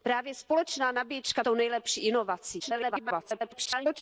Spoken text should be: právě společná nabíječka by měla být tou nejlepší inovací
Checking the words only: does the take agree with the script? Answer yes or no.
no